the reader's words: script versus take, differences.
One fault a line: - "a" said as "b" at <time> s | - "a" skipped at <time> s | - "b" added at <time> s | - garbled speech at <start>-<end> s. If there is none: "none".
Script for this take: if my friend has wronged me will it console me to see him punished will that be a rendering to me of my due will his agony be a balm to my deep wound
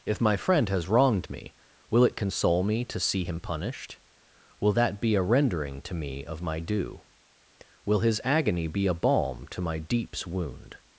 - "deep" said as "deeps" at 9.8 s